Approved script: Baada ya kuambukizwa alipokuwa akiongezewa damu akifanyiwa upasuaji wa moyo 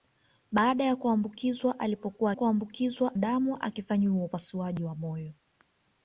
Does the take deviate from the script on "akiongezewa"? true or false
true